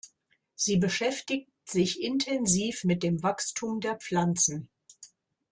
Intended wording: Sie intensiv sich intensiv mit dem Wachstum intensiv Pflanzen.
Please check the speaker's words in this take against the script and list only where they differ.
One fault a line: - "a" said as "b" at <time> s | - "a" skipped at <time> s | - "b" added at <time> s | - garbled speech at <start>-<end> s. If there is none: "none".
- "intensiv" said as "beschäftigt" at 0.8 s
- "intensiv" said as "der" at 3.8 s